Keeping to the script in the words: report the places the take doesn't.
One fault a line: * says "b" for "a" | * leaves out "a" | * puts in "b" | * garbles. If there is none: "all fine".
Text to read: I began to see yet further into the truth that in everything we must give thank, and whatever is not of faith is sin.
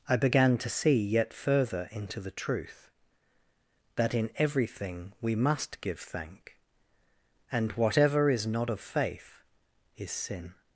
all fine